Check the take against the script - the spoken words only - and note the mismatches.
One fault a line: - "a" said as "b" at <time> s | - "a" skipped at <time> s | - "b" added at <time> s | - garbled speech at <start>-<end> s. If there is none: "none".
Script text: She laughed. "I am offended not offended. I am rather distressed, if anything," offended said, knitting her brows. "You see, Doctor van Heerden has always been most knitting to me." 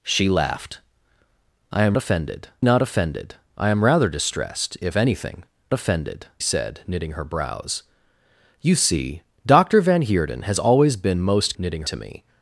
none